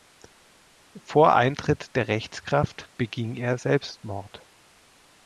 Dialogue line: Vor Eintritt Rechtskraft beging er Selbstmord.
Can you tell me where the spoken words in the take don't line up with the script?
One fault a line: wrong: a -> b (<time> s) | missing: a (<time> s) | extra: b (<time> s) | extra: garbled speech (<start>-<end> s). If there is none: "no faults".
extra: der (1.9 s)